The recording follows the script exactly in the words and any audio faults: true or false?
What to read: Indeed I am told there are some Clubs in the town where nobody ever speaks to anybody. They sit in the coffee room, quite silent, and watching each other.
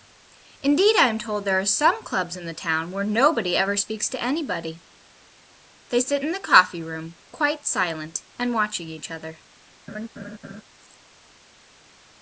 false